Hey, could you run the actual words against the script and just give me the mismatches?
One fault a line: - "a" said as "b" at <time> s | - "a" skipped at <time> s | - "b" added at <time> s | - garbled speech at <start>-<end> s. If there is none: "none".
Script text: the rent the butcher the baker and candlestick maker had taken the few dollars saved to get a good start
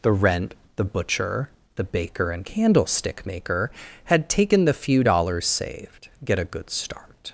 - "to" skipped at 6.1 s